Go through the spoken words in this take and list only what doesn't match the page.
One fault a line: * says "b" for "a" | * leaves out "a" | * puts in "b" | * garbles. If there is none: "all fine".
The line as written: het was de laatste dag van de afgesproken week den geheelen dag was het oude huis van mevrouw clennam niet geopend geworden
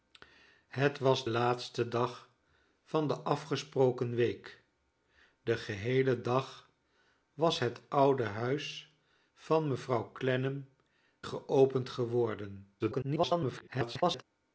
* leaves out "de"
* leaves out "niet"
* garbles